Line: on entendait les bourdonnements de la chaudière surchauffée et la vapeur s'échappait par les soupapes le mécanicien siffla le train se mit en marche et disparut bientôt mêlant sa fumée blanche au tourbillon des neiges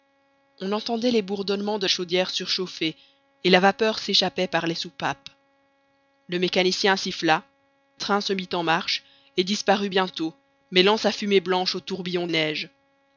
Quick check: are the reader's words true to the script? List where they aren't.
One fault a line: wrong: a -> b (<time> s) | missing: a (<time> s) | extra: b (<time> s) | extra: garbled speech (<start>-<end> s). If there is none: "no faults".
missing: la (1.9 s)
missing: le (7.4 s)
missing: des (12.2 s)